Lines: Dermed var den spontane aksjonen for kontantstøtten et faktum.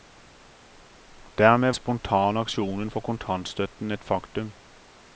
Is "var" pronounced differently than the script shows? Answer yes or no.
yes